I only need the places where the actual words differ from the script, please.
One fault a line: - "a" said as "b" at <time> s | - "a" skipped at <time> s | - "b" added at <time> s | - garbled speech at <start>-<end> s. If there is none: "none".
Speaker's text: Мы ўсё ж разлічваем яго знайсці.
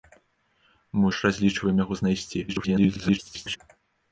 - "ўсё" skipped at 1.1 s
- garbled speech at 2.5-3.6 s